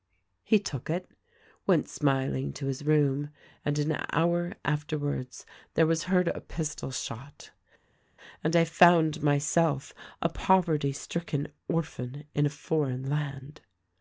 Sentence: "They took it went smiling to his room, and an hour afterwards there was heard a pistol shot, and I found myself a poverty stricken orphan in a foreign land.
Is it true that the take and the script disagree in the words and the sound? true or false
true